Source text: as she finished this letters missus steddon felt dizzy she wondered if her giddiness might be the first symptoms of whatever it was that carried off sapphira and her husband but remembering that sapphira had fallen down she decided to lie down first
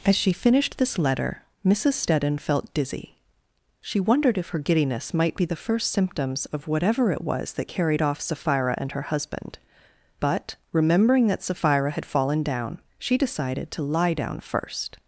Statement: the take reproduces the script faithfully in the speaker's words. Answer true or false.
false